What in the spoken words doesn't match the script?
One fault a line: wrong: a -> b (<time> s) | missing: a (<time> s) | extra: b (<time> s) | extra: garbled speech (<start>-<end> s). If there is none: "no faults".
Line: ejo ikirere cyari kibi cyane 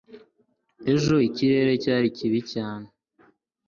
no faults